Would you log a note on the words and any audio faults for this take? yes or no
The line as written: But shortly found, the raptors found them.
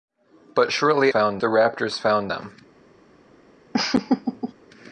yes